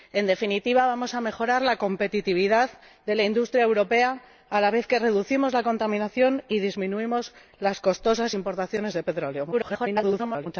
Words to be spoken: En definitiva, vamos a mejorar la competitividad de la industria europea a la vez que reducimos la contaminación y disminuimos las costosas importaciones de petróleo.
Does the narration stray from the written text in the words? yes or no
yes